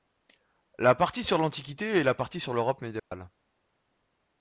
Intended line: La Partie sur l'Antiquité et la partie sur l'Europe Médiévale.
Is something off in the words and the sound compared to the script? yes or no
yes